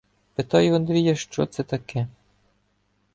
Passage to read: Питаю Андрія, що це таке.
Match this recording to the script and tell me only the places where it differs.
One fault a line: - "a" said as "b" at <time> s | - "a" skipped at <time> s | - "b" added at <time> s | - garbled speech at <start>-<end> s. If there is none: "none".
none